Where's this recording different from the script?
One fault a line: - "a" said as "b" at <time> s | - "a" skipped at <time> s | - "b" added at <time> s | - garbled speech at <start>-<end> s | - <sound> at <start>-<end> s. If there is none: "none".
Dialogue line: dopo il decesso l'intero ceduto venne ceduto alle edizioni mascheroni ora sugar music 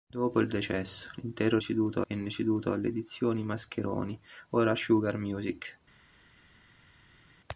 none